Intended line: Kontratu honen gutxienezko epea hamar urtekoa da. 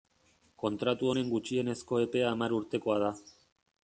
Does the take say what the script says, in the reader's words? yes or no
yes